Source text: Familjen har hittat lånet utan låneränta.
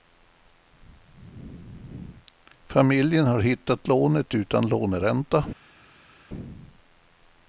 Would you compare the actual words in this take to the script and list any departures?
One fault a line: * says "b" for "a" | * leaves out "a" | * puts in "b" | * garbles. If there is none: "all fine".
all fine